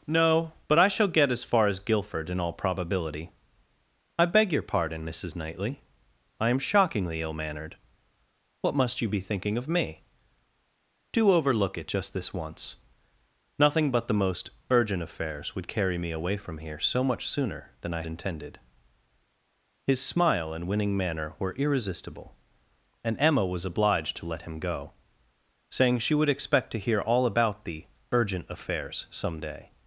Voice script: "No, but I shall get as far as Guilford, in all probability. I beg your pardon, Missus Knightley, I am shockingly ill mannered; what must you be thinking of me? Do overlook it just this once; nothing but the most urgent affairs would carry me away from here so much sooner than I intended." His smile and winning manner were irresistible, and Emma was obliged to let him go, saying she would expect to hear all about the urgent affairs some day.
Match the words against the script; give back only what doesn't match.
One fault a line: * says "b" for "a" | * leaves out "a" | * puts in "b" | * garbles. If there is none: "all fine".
all fine